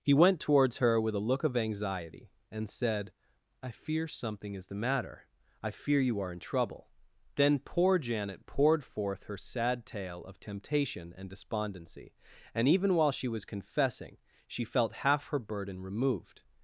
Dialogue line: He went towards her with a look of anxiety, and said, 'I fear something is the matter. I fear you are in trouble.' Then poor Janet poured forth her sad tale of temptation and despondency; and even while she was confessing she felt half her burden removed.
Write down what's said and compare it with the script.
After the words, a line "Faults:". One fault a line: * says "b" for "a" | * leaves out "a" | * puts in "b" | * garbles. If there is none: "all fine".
He went towards her with a look of anxiety, and said, 'I fear something is the matter. I fear you are in trouble.' Then poor Janet poured forth her sad tale of temptation and despondency; and even while she was confessing she felt half her burden removed.
Faults:
all fine